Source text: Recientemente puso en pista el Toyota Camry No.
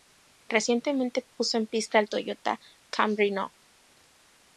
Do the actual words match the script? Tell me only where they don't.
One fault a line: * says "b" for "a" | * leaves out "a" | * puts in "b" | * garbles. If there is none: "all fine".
all fine